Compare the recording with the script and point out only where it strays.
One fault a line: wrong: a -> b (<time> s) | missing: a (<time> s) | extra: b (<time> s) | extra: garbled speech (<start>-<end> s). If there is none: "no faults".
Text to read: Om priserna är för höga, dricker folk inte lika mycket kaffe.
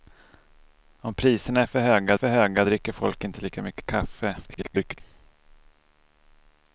extra: för höga (2.1 s)
extra: garbled speech (4.4-5.0 s)